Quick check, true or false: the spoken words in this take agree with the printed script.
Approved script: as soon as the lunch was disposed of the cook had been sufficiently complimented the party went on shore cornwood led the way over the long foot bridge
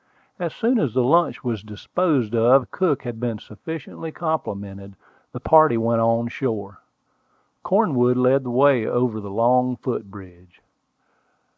true